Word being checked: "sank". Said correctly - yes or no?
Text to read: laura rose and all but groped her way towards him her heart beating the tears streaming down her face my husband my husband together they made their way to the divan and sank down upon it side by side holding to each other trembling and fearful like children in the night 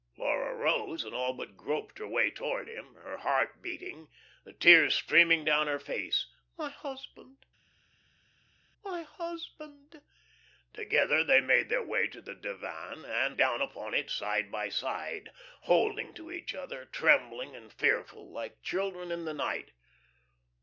no